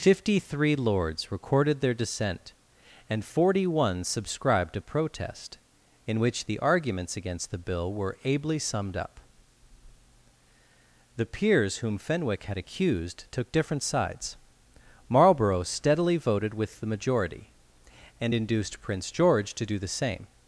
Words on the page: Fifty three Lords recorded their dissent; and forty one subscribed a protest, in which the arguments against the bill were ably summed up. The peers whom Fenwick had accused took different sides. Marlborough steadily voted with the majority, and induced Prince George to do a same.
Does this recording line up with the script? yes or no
no